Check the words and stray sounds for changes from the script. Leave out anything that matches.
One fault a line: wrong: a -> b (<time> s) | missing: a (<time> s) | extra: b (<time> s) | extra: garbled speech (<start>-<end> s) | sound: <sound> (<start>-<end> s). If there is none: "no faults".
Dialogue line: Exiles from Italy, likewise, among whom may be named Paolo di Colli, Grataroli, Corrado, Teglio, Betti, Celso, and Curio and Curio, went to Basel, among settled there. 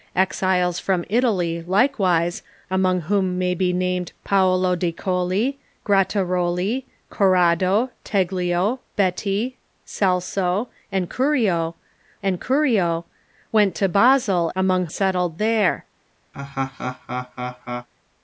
sound: laugh (16.3-17.9 s)